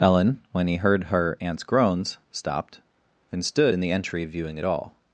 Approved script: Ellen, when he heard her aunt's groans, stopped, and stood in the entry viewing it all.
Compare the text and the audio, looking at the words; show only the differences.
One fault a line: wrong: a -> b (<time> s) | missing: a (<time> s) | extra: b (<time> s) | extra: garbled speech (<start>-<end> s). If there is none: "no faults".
no faults